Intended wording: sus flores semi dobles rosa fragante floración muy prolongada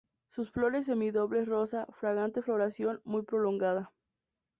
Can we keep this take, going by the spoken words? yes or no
yes